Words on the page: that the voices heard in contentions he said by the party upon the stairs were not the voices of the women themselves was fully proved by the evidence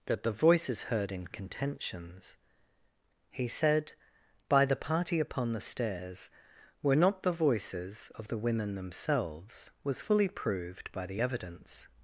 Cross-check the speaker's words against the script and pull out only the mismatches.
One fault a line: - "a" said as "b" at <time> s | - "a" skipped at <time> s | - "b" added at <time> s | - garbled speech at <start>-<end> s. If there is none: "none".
none